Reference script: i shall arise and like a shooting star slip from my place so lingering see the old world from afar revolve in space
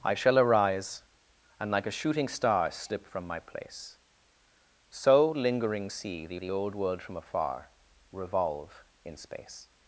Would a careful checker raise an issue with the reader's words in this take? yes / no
yes